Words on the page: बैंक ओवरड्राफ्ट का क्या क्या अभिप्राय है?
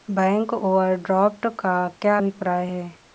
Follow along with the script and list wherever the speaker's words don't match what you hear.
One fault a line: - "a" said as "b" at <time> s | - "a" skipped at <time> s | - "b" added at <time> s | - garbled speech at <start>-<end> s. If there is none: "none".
- "क्या" skipped at 2.2 s